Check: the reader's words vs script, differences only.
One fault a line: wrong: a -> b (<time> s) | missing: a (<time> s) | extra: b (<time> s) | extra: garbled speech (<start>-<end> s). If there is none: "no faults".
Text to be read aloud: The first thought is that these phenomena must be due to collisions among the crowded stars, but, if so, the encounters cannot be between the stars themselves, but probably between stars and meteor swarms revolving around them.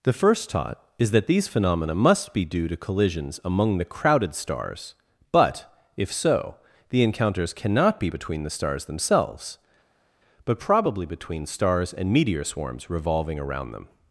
wrong: thought -> taught (0.5 s)